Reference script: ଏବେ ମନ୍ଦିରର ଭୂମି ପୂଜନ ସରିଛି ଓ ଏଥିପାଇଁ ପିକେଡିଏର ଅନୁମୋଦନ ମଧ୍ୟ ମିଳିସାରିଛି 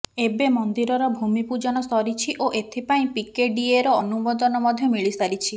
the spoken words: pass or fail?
pass